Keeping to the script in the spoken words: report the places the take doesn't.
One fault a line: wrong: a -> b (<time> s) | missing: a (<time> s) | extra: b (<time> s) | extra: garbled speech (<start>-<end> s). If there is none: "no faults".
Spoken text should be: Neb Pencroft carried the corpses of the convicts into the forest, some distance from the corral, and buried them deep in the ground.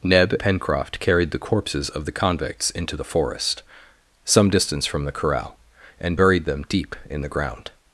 no faults